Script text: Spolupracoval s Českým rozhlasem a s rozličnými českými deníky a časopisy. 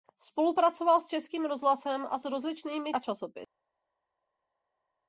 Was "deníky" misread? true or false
true